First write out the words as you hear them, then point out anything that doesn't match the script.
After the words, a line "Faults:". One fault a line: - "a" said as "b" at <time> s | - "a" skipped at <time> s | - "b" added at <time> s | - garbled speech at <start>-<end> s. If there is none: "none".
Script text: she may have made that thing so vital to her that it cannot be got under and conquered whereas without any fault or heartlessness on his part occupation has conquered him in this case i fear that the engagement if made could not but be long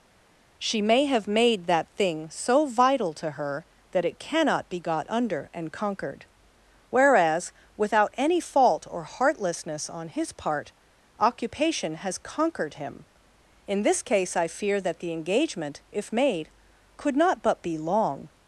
she may have made that thing so vital to her that it cannot be got under and conquered whereas without any fault or heartlessness on his part occupation has conquered him in this case i fear that the engagement if made could not but be long
Faults:
none